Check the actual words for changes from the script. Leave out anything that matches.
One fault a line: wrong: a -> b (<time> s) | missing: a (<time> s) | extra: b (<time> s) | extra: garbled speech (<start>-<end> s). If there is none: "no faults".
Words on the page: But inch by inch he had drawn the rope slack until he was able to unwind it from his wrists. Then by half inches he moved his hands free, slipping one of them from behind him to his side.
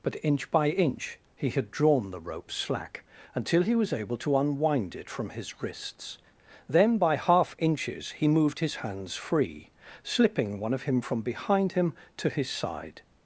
wrong: them -> him (10.8 s)